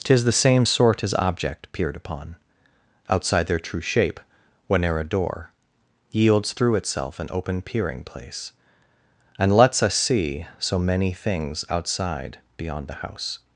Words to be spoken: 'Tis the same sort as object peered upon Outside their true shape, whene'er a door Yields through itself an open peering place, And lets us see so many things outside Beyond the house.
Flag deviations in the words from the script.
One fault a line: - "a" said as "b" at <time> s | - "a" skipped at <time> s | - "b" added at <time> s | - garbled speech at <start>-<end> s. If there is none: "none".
none